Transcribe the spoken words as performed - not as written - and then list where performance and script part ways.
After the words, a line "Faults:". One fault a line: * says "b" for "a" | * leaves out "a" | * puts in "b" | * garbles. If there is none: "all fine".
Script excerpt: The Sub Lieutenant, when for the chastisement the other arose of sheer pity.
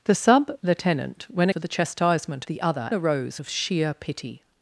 The Sub Lieutenant, when for the chastisement the other arose of sheer pity.
Faults:
all fine